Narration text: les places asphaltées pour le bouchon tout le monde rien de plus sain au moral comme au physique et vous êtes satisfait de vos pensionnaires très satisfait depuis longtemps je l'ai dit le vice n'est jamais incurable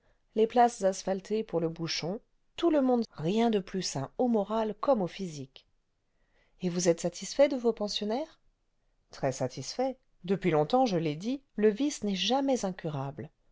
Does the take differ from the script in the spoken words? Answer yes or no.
no